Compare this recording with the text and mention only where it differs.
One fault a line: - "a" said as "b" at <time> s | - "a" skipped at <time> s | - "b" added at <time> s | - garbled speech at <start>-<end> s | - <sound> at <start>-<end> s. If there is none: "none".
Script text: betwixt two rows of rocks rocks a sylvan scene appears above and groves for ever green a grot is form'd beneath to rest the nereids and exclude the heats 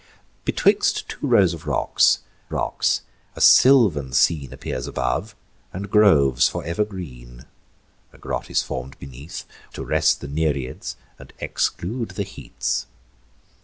none